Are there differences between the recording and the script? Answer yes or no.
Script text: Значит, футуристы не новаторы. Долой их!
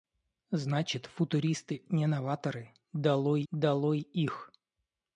yes